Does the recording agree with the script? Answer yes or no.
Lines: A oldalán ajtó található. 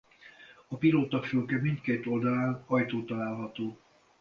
no